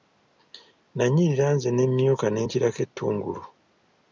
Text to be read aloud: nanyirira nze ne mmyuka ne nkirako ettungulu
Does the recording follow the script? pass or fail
pass